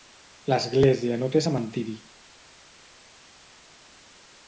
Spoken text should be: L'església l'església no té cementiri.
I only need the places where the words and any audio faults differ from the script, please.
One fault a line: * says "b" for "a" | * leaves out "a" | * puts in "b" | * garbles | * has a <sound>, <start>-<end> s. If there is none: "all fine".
* leaves out "l'església"